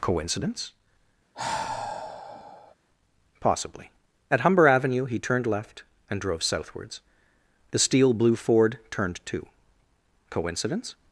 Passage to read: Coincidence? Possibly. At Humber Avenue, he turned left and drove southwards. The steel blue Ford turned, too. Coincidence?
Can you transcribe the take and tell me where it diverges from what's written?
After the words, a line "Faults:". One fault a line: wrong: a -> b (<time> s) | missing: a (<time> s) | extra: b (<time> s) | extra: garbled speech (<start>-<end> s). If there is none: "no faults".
Coincidence? Possibly. At Humber Avenue, he turned left and drove southwards. The steel blue Ford turned, too. Coincidence?
Faults:
no faults